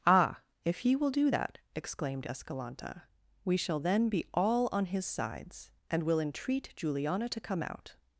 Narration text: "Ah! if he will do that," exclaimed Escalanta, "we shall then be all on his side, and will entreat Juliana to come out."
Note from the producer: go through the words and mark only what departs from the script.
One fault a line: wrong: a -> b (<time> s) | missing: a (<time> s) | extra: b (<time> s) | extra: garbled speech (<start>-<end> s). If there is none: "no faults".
wrong: side -> sides (5.1 s)